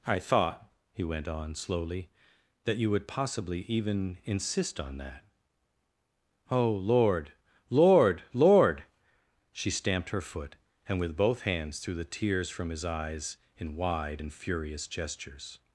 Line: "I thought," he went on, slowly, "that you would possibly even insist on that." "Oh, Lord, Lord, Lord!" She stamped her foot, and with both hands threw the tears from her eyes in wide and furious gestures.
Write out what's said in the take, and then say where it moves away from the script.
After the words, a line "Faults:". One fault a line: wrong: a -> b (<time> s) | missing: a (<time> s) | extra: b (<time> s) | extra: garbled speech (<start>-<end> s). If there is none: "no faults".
"I thought," he went on, slowly, "that you would possibly even insist on that." "Oh, Lord, Lord, Lord!" She stamped her foot, and with both hands threw the tears from his eyes in wide and furious gestures.
Faults:
wrong: her -> his (12.7 s)